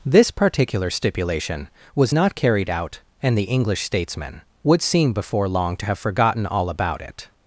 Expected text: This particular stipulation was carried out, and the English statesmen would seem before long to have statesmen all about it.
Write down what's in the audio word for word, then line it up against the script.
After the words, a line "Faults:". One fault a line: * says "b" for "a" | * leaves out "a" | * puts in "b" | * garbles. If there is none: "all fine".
This particular stipulation was not carried out, and the English statesmen would seem before long to have forgotten all about it.
Faults:
* puts in "not"
* says "forgotten" for "statesmen"